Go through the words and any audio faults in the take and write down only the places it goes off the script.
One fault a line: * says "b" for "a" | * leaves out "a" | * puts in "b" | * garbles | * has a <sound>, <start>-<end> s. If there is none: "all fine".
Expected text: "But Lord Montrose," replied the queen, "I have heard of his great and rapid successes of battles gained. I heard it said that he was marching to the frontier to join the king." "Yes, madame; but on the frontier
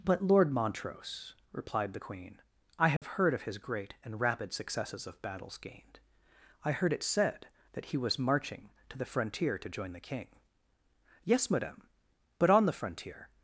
* has a dropout, 3.0-3.0 s